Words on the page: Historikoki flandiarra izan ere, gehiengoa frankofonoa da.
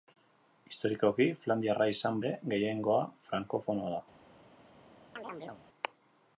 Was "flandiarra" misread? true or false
false